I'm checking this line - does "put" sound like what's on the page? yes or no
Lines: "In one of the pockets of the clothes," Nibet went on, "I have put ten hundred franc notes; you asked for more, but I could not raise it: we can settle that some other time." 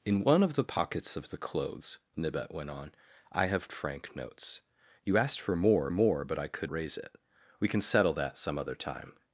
no